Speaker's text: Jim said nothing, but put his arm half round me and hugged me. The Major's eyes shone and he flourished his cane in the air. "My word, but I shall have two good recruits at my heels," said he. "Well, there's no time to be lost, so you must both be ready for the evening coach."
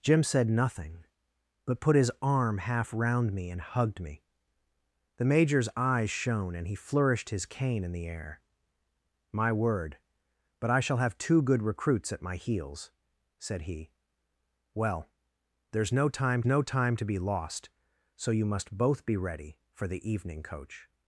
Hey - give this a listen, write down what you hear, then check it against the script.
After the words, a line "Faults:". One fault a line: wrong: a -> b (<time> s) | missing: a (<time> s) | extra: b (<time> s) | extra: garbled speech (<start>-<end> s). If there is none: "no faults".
Jim said nothing, but put his arm half round me and hugged me. The Major's eyes shone and he flourished his cane in the air. "My word, but I shall have two good recruits at my heels," said he. "Well, there's no time no time to be lost, so you must both be ready for the evening coach."
Faults:
extra: no time (16.5 s)